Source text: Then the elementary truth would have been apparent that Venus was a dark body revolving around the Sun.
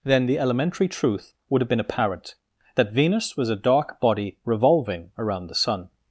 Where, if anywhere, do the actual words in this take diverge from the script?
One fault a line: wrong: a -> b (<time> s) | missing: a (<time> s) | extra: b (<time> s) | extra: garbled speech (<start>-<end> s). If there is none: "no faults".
no faults